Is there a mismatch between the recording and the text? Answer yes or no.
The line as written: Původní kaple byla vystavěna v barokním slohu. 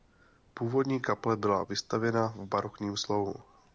no